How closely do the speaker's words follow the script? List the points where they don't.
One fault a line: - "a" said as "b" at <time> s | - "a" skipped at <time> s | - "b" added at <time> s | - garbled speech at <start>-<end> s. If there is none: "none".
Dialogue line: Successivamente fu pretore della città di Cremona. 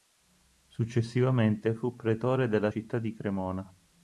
none